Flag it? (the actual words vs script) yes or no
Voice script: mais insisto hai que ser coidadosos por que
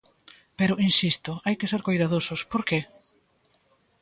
yes